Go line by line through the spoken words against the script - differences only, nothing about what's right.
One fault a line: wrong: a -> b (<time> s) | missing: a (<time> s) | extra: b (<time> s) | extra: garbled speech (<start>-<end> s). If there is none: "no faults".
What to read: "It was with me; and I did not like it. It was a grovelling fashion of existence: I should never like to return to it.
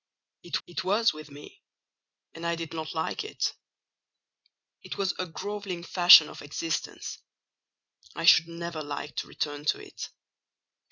extra: it (0.6 s)